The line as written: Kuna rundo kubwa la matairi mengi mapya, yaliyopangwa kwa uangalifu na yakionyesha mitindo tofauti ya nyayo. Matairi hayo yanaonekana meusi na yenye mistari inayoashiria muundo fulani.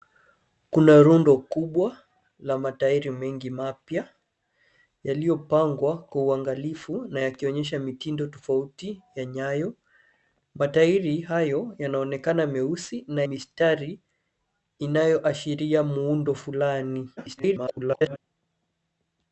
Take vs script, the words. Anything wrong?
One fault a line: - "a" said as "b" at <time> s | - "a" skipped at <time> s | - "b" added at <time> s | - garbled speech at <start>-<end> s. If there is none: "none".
- "yenye" skipped at 13.2 s
- garbled speech at 17.2-18.2 s